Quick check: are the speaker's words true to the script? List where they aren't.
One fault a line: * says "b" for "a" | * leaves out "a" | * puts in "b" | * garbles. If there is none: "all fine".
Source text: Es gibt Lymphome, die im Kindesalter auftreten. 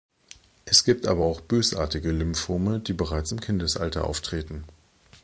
* puts in "aber auch bösartige"
* puts in "bereits"